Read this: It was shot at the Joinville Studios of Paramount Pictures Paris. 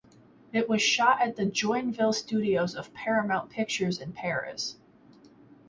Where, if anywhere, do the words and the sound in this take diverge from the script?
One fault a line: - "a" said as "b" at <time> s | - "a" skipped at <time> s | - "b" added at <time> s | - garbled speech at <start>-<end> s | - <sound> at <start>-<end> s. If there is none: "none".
- "in" added at 4.0 s